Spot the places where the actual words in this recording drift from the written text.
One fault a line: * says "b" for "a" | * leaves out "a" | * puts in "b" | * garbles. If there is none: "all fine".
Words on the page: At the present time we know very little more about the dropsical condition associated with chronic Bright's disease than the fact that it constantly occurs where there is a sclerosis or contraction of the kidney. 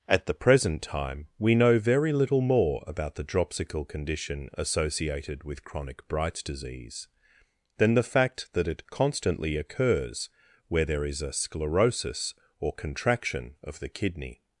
all fine